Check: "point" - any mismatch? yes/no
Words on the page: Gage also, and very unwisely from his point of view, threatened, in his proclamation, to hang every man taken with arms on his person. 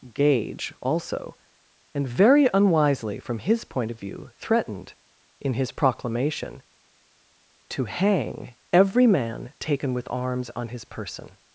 no